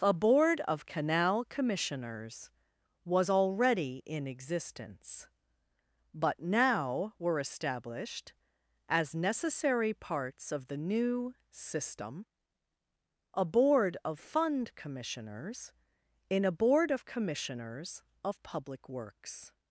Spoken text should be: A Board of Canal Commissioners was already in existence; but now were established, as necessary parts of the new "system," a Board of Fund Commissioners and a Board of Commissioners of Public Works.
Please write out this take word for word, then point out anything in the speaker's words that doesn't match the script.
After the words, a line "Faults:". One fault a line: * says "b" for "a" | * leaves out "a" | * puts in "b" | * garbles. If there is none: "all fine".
A Board of Canal Commissioners was already in existence; but now were established, as necessary parts of the new "system," a Board of Fund Commissioners in a Board of Commissioners of Public Works.
Faults:
* says "in" for "and"